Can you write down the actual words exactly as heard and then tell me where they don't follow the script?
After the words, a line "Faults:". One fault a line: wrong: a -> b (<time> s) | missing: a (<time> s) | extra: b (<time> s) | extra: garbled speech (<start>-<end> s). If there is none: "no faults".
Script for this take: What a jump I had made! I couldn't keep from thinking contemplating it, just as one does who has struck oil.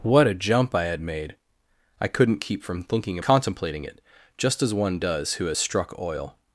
What a jump I had made! I couldn't keep from thinking contemplating it, just as one does who has struck oil.
Faults:
no faults